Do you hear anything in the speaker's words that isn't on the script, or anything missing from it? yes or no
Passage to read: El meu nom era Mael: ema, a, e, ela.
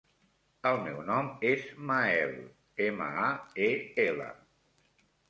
yes